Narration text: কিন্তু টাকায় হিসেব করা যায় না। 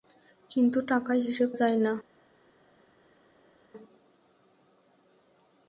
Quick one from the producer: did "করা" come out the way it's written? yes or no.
no